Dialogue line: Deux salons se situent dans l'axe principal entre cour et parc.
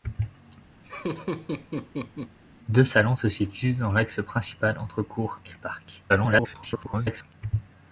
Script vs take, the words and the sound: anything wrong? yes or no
yes